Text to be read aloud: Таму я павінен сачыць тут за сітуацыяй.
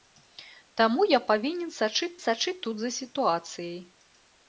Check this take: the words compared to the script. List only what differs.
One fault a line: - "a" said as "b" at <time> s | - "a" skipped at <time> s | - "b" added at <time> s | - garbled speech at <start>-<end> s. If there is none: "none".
- "сачыць" added at 2.3 s